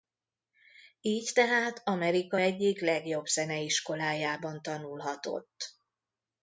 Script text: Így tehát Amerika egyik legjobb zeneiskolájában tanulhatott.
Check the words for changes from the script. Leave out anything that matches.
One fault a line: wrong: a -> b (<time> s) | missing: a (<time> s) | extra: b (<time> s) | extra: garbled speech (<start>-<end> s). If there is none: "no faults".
no faults